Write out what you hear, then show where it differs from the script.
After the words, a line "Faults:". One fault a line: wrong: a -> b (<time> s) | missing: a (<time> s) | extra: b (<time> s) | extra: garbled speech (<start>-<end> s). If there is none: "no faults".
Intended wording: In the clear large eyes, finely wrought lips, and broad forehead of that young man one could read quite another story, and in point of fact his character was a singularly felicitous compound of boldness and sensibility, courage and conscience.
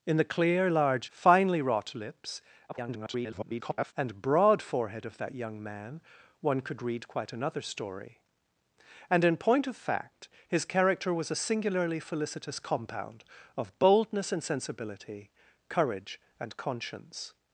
In the clear large finely wrought lips, [garbled] and broad forehead of that young man one could read quite another story, and in point of fact his character was a singularly felicitous compound of boldness and sensibility, courage and conscience.
Faults:
missing: eyes (1.1 s)
extra: garbled speech (2.7-3.9 s)